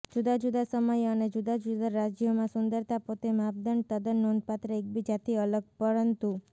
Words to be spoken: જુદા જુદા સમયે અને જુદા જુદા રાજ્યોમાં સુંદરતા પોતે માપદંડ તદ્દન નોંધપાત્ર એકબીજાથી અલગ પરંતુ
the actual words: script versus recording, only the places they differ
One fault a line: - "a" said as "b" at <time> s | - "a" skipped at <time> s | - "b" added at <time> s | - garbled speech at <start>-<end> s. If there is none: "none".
none